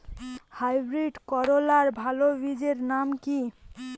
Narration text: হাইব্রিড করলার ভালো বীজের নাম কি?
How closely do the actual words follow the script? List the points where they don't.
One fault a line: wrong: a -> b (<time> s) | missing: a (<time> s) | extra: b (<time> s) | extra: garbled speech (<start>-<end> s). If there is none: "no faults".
no faults